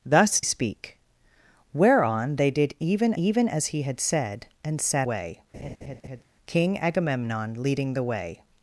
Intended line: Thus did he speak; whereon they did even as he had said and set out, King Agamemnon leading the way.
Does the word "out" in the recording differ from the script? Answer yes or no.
yes